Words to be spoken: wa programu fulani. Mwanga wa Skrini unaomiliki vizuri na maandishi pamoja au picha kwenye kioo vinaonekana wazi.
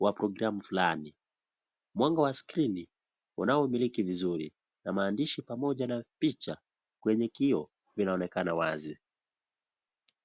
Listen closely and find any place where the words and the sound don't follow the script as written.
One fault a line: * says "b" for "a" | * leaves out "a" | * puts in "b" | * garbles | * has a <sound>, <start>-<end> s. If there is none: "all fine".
* says "na" for "au"